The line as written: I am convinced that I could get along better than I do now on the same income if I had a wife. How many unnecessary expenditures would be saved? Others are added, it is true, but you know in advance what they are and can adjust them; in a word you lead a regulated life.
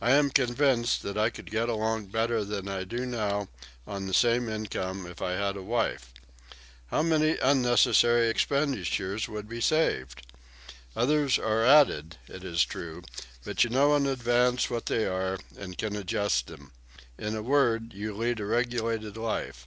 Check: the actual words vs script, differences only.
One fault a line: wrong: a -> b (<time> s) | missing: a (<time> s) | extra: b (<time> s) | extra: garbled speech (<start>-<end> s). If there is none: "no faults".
no faults